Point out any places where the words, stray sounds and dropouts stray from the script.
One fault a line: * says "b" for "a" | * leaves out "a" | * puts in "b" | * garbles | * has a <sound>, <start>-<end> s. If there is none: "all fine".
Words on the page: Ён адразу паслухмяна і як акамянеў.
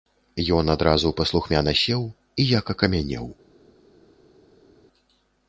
* puts in "сеў"